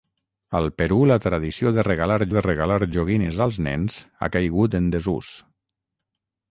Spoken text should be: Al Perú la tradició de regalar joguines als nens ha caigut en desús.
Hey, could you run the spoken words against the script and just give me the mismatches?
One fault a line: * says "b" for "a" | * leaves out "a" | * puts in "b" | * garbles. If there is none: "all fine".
* puts in "de regalar"